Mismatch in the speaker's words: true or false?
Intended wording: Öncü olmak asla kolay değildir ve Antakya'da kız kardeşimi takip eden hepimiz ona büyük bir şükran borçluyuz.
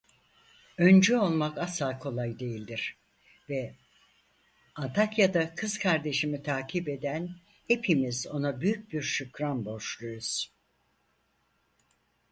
false